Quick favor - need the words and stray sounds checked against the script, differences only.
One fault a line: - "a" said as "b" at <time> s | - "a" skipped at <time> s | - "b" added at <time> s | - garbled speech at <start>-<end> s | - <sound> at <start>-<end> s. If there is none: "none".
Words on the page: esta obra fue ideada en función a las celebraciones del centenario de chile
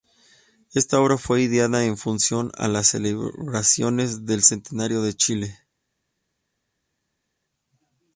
none